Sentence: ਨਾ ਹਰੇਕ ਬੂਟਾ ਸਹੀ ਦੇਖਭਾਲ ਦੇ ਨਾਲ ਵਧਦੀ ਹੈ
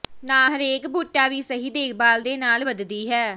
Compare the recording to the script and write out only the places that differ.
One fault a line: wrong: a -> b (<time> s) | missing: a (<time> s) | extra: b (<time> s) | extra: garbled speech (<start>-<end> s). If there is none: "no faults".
extra: ਵੀ (1.3 s)